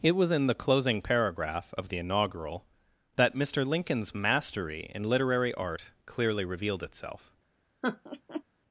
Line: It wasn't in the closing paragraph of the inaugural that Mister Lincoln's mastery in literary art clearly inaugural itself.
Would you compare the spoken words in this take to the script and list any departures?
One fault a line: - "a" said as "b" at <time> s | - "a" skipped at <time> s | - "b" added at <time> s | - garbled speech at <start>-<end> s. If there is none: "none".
- "wasn't" said as "was" at 0.1 s
- "inaugural" said as "revealed" at 6.5 s